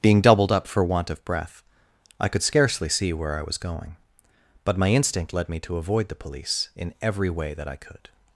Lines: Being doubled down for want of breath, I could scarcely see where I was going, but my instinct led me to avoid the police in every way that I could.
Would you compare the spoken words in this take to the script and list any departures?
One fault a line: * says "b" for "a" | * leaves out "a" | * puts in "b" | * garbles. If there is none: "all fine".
* says "up" for "down"